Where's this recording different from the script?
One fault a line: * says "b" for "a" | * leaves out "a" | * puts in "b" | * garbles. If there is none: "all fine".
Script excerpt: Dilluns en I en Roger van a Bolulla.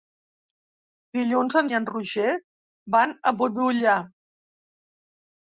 all fine